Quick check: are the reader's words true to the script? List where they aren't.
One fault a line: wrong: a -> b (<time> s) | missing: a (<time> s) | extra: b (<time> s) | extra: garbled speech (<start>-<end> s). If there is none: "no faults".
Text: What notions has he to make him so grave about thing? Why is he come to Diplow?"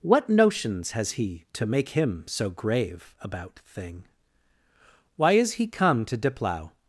no faults